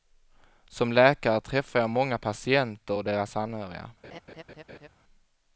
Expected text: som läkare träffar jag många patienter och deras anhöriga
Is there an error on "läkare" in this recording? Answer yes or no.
no